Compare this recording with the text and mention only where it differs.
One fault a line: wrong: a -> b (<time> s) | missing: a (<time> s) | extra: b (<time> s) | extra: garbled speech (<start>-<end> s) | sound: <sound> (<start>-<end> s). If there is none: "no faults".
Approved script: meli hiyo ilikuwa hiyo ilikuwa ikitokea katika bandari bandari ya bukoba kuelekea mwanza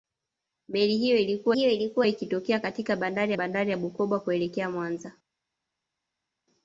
no faults